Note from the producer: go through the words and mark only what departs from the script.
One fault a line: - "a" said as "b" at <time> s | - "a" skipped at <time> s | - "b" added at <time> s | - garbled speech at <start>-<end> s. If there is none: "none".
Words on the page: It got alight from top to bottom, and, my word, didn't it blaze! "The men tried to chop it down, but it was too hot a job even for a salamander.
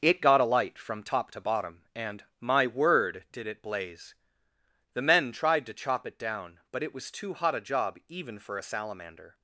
- "didn't" said as "did" at 3.3 s